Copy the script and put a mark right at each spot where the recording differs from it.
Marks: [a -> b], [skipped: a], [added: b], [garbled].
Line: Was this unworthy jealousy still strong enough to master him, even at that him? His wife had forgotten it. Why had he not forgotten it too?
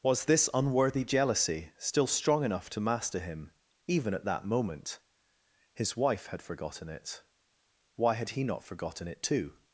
Was this unworthy jealousy still strong enough to master him, even at that [him? -> moment] His wife had forgotten it. Why had he not forgotten it too?